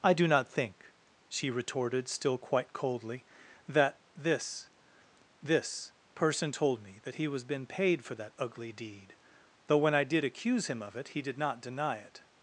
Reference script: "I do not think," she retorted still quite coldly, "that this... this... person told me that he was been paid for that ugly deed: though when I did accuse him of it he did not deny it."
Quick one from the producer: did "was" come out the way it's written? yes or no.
yes